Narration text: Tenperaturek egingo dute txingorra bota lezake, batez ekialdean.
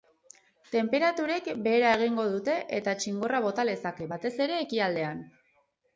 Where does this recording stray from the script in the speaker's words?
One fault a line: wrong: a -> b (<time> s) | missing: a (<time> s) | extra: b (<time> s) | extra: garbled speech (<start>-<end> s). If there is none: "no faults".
extra: behera (1.7 s)
extra: eta (2.8 s)
extra: ere (4.5 s)